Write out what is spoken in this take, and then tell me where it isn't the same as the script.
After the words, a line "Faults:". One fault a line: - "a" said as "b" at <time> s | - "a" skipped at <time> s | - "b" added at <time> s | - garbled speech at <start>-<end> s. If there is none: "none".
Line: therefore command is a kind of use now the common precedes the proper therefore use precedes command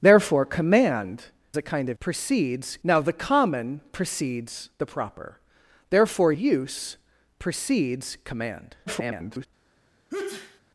therefore command a kind of precedes now the common precedes the proper therefore use precedes command [garbled]
Faults:
- "is" skipped at 1.2 s
- "use" said as "precedes" at 2.0 s
- garbled speech at 8.9-9.5 s